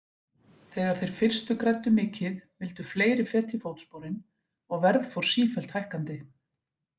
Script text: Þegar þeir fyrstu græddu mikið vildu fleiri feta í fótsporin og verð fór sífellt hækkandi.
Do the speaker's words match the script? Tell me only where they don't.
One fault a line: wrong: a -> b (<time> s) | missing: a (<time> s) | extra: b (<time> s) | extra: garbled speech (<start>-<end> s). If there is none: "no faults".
no faults